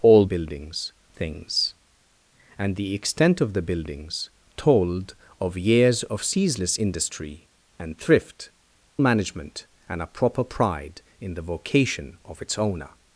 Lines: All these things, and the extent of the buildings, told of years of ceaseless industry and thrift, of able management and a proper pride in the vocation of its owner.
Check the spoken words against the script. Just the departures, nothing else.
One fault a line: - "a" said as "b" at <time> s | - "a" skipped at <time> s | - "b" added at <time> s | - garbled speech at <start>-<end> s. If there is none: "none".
- "these" said as "buildings" at 0.2 s
- "of able" skipped at 8.5 s